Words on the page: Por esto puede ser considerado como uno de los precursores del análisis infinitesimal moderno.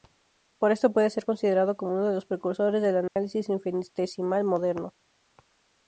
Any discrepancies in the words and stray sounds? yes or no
yes